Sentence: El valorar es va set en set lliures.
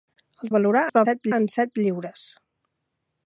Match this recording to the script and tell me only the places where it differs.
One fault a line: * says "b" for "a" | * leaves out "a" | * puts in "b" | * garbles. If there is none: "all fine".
all fine